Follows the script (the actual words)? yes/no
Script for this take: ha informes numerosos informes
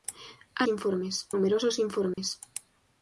yes